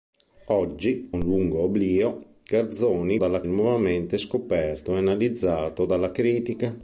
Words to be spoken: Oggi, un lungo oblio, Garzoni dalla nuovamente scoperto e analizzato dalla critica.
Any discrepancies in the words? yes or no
no